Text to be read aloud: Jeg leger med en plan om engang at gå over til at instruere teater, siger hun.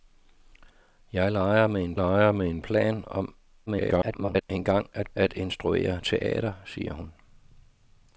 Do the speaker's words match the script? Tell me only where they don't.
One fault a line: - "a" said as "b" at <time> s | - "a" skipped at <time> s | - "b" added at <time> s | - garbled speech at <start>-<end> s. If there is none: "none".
- "leger med en" added at 1.9 s
- garbled speech at 3.7-4.4 s
- "gå over til" skipped at 5.1 s